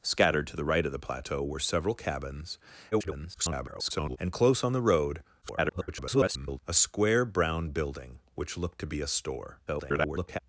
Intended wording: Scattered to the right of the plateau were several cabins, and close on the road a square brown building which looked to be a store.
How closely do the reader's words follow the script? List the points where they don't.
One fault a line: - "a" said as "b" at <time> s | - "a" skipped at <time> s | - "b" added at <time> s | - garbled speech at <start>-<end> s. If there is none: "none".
- garbled speech at 2.9-4.2 s
- garbled speech at 5.4-6.6 s
- garbled speech at 9.7-10.4 s